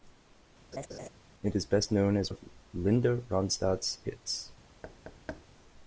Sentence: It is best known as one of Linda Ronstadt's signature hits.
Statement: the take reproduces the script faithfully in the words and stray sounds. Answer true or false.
false